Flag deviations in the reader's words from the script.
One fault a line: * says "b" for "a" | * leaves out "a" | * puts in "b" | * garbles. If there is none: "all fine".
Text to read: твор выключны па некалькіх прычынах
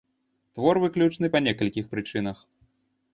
all fine